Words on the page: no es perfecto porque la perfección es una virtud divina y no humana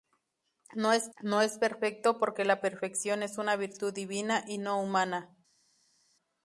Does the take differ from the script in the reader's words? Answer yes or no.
yes